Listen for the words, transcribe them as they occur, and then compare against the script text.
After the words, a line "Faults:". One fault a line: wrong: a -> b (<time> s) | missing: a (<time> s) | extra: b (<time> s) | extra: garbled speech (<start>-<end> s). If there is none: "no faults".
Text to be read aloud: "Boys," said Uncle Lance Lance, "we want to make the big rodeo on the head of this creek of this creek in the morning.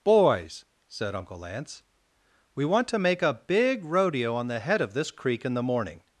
"Boys," said Uncle Lance, "we want to make a big rodeo on the head of this creek in the morning.
Faults:
missing: Lance (1.8 s)
wrong: the -> a (3.2 s)
missing: of this creek (5.5 s)